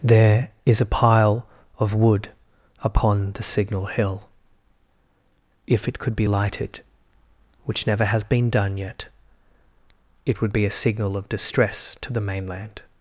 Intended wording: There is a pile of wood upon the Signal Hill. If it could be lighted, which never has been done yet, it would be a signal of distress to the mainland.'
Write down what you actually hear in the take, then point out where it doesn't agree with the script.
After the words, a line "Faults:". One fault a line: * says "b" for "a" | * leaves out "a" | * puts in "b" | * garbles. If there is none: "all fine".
There is a pile of wood upon the Signal Hill. If it could be lighted, which never has been done yet, it would be a signal of distress to the mainland.'
Faults:
all fine